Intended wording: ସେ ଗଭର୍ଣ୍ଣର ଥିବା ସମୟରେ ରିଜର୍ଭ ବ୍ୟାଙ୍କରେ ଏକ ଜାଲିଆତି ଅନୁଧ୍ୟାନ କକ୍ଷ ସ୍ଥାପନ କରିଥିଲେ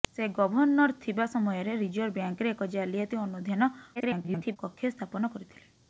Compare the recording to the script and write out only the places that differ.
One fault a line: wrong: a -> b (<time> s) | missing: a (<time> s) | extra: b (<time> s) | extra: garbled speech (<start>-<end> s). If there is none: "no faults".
extra: garbled speech (4.0-4.6 s)